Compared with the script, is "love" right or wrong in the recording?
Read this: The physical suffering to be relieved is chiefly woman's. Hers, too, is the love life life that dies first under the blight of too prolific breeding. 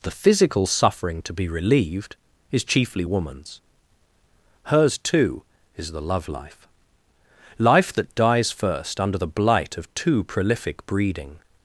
right